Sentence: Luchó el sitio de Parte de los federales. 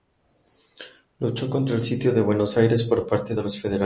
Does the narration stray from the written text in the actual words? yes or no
yes